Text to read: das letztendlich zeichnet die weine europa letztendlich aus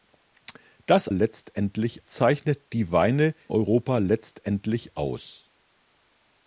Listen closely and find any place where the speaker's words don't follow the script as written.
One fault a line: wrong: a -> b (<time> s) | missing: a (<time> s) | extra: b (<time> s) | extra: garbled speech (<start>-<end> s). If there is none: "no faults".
no faults